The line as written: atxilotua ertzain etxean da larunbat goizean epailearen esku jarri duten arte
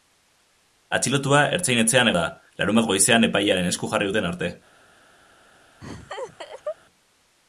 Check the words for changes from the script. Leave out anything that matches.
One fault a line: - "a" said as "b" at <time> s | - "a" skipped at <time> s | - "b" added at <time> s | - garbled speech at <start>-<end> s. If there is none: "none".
none